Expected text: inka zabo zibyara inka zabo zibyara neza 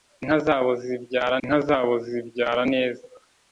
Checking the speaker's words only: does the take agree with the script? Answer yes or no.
yes